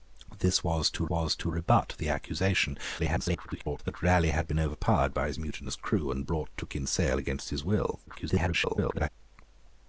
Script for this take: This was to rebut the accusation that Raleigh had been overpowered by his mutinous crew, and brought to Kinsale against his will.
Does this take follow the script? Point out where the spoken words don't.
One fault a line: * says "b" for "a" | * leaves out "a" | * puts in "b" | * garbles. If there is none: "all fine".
* puts in "was to"
* garbles
* garbles